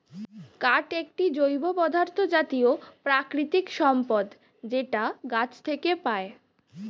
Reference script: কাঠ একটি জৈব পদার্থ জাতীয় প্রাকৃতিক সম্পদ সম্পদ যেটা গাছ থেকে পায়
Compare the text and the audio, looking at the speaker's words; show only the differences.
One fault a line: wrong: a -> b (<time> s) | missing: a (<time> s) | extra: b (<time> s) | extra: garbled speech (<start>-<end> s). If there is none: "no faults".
missing: সম্পদ (4.2 s)